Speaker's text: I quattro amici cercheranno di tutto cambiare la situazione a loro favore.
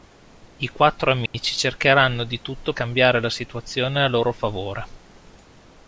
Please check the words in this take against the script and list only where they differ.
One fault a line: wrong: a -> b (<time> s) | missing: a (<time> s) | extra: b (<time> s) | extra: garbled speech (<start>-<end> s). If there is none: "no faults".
no faults